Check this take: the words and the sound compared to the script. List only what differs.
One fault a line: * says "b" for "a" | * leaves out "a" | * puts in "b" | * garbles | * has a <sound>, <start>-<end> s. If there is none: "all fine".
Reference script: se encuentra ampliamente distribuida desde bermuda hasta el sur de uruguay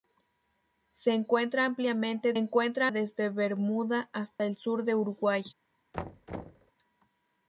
* says "encuentra" for "distribuida"
* has a dropout, 4.4-4.4 s
* has a thud, 5.9-6.7 s